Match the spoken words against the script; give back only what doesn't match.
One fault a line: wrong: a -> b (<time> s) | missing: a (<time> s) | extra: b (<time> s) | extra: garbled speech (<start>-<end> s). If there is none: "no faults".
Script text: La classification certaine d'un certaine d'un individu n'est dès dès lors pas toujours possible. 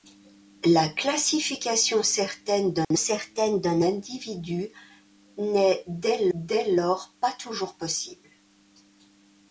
no faults